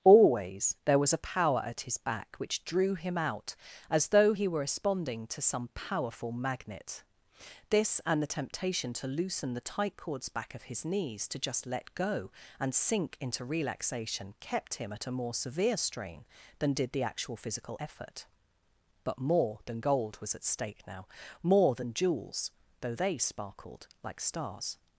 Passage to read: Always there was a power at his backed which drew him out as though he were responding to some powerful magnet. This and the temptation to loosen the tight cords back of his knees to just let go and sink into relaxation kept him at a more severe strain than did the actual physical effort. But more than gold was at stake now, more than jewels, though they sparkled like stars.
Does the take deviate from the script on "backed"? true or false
true